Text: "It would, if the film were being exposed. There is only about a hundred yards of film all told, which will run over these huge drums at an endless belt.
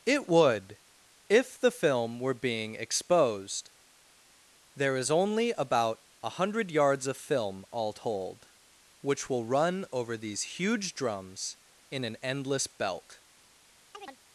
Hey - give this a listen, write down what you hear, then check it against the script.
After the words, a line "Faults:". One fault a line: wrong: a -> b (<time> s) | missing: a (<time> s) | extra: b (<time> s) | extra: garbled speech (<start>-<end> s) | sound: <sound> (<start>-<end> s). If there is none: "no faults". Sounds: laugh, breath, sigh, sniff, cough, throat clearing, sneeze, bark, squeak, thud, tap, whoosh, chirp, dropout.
"It would, if the film were being exposed. There is only about a hundred yards of film all told, which will run over these huge drums in an endless belt.
Faults:
wrong: at -> in (11.9 s)
sound: chirp (13.9-14.2 s)